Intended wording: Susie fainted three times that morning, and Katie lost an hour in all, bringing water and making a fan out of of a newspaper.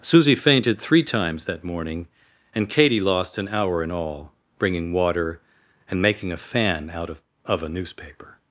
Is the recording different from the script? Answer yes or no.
no